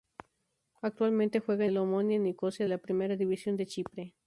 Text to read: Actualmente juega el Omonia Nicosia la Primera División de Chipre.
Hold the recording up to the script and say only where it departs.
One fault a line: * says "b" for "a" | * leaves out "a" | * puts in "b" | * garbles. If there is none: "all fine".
all fine